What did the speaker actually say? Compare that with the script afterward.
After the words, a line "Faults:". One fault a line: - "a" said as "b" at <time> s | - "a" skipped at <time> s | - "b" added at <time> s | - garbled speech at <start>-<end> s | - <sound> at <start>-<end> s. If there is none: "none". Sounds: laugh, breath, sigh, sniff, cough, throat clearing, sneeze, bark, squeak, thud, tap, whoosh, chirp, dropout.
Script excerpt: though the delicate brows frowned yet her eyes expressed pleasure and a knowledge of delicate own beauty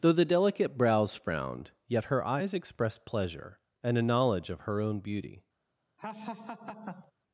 though the delicate brows frowned yet her eyes expressed pleasure and a knowledge of her own beauty
Faults:
- "delicate" said as "her" at 4.6 s
- laugh at 6.0-7.1 s